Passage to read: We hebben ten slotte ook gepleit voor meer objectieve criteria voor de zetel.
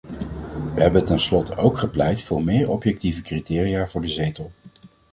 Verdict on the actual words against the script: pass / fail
pass